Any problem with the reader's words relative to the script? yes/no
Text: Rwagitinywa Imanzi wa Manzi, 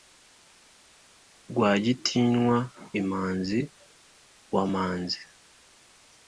no